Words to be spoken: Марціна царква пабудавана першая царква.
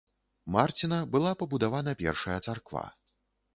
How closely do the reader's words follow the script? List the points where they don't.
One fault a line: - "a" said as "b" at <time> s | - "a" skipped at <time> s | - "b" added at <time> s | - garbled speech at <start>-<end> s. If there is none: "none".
- "царква" said as "была" at 1.2 s